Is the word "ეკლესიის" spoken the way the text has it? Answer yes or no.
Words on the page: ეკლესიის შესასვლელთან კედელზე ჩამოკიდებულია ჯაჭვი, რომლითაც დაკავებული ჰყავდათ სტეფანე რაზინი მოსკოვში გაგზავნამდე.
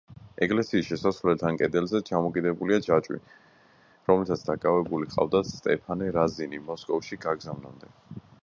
yes